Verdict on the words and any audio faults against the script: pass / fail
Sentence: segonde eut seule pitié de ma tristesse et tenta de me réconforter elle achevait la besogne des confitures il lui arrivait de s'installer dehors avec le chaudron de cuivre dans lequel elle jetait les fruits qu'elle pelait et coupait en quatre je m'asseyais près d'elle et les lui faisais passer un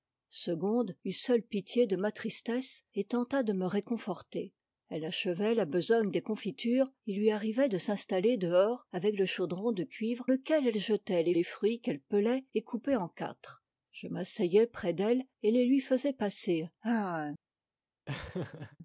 fail